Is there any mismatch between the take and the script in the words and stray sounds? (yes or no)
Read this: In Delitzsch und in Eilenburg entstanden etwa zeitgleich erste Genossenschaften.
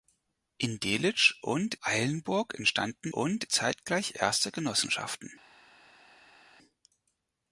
yes